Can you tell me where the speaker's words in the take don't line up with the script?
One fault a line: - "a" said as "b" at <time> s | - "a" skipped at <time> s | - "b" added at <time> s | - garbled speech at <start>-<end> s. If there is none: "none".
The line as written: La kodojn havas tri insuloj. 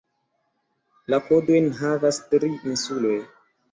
none